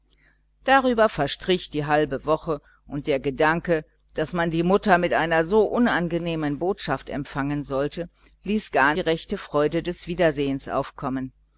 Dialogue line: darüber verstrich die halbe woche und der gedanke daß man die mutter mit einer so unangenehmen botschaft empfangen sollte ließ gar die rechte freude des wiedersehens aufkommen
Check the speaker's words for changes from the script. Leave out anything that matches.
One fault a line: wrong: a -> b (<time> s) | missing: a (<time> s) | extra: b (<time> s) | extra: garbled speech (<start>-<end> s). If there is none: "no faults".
no faults